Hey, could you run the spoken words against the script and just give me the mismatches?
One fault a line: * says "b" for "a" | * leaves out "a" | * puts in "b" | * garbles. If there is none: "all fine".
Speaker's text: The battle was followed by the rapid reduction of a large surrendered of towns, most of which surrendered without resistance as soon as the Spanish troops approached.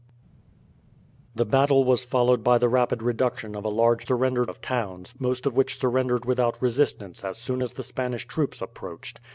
all fine